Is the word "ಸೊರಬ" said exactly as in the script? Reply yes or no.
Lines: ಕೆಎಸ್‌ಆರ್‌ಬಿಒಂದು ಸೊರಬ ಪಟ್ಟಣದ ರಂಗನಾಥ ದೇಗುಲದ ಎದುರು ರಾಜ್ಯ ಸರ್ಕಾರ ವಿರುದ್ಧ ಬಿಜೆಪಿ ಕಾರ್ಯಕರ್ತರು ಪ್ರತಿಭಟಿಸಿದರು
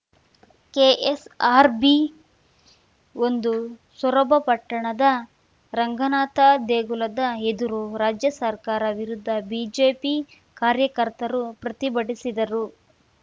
yes